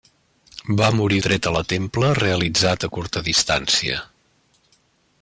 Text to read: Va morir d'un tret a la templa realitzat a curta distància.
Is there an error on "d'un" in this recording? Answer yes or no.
yes